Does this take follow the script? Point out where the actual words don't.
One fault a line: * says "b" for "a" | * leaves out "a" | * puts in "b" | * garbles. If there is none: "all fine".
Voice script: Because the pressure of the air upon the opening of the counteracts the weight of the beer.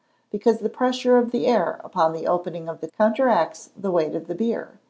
all fine